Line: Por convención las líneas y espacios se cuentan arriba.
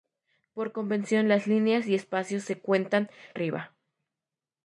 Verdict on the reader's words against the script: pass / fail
pass